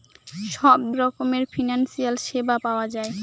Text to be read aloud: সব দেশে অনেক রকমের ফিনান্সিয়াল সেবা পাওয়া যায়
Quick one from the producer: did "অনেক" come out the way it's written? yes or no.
no